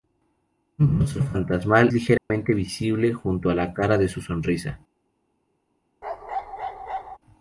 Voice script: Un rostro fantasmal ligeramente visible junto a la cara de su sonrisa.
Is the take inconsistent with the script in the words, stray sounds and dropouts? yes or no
yes